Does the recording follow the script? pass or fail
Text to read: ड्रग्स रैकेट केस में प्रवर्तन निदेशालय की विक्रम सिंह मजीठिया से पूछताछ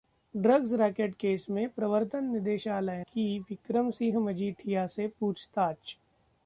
pass